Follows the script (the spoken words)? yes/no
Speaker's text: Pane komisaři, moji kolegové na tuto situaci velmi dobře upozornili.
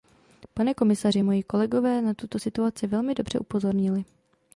yes